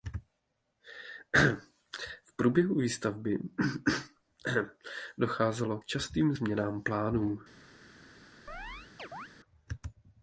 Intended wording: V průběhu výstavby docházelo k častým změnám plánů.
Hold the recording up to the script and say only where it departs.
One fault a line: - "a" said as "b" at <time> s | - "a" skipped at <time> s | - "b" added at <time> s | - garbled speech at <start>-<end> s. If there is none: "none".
none